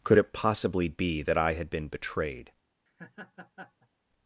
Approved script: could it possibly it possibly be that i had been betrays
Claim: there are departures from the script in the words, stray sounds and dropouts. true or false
true